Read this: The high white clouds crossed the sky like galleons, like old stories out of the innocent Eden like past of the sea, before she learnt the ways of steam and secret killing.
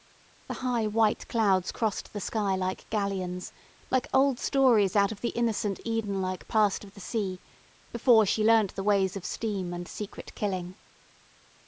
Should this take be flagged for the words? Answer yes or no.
no